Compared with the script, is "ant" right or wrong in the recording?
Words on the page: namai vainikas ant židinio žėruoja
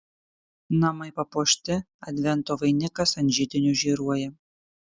right